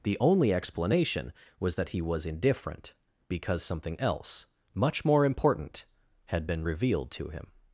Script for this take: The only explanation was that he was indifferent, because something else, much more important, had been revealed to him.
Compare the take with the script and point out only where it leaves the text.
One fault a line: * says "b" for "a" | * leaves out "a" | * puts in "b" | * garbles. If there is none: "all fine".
all fine